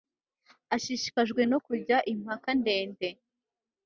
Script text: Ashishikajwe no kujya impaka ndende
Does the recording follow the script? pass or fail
pass